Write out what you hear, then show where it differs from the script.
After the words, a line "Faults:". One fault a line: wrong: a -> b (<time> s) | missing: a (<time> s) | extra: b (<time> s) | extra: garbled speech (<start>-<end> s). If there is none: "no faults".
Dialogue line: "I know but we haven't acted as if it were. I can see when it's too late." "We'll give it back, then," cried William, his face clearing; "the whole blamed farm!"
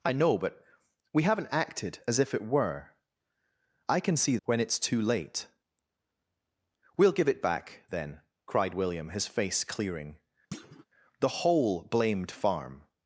"I know but we haven't acted as if it were. I can see when it's too late." "We'll give it back, then," cried William, his face clearing; "the whole blamed farm!"
Faults:
no faults